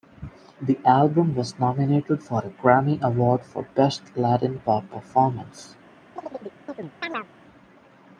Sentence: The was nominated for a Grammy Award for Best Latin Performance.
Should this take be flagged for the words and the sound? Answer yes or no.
yes